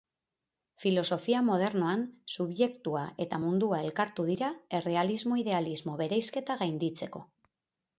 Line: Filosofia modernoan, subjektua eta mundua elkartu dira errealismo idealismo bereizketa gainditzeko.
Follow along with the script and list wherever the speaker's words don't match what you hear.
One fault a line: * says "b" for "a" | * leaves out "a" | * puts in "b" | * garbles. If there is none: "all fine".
all fine